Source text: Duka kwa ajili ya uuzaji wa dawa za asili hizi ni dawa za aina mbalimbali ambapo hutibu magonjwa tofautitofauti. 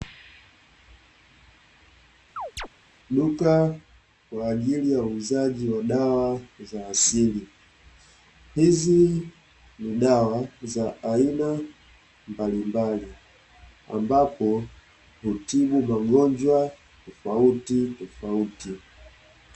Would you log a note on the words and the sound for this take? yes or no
yes